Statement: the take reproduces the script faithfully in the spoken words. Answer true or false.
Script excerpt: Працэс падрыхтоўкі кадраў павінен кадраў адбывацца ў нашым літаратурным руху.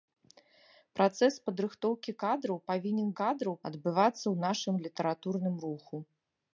true